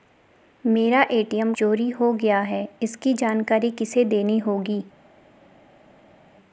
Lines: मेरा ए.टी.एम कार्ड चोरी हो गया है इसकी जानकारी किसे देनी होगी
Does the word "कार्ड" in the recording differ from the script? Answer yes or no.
yes